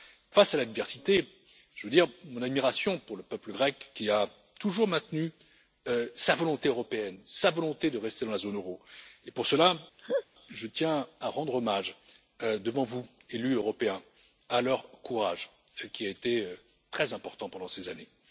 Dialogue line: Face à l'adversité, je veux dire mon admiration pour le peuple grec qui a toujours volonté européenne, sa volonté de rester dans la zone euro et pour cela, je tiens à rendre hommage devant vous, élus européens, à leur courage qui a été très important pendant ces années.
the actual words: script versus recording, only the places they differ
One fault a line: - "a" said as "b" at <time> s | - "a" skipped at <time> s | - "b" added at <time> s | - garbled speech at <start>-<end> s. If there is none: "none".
- "maintenu sa" added at 4.9 s